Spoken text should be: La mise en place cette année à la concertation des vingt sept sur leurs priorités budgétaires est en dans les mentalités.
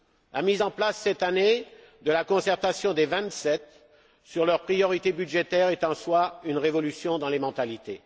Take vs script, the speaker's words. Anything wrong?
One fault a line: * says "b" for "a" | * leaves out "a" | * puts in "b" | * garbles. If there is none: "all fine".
* says "de" for "à"
* puts in "soi une révolution"